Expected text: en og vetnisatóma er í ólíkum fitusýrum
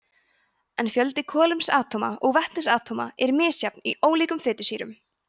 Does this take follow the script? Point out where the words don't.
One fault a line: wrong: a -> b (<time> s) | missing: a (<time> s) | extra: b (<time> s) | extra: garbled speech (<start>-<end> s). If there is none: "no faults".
extra: fjöldi kolefnisatóma (0.9 s)
extra: misjafn (3.4 s)